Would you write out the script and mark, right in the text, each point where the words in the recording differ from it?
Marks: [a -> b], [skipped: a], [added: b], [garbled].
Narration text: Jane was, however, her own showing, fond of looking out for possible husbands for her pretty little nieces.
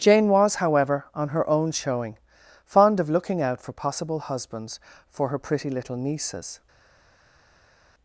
Jane was, however, [added: on] her own showing, fond of looking out for possible husbands for her pretty little nieces.